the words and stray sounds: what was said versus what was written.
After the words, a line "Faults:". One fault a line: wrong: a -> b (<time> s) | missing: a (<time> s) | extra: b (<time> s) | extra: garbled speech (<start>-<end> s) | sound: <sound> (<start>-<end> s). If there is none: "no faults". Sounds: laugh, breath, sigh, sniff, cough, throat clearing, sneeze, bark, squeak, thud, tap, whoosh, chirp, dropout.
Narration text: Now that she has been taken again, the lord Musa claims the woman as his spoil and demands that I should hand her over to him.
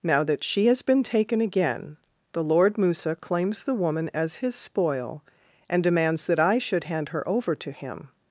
Now that she has been taken again, the lord Musa claims the woman as his spoil and demands that I should hand her over to him.
Faults:
no faults